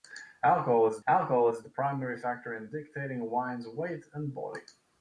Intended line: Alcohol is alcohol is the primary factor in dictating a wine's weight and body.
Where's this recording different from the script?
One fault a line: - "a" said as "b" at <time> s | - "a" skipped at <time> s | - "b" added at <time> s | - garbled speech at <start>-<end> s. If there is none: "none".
none